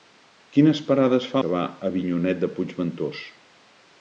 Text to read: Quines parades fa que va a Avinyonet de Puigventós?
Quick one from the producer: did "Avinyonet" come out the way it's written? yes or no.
yes